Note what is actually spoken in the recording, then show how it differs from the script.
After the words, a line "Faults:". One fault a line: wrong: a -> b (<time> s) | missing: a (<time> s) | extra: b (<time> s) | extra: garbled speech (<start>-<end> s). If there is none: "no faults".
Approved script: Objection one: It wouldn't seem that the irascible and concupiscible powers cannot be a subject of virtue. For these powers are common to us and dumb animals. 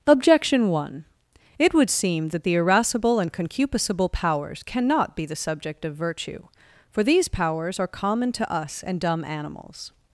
Objection one: It would seem that the irascible and concupiscible powers cannot be the subject of virtue. For these powers are common to us and dumb animals.
Faults:
wrong: wouldn't -> would (1.7 s)
wrong: a -> the (5.3 s)